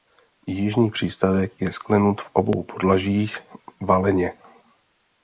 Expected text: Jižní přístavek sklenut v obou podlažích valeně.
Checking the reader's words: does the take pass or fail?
fail